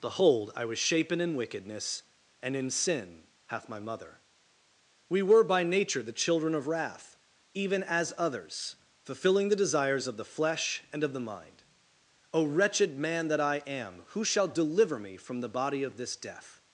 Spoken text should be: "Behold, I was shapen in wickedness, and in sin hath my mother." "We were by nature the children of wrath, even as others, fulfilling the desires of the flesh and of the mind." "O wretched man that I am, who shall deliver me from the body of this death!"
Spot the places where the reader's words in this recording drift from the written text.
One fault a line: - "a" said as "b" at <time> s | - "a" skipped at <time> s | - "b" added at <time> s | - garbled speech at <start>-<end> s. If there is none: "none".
none